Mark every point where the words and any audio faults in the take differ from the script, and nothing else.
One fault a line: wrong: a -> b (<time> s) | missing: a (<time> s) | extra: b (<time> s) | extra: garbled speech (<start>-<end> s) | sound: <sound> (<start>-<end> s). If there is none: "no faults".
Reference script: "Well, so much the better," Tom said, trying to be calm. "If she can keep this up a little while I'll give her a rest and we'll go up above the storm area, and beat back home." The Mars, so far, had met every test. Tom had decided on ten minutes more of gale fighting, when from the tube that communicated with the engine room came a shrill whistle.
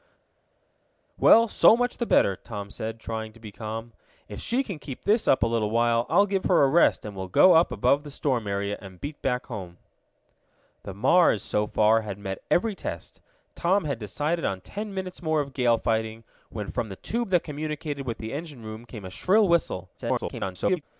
extra: garbled speech (20.0-20.8 s)